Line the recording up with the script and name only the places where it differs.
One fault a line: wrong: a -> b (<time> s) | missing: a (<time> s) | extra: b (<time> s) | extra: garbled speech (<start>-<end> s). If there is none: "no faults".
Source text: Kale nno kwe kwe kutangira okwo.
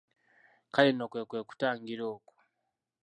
no faults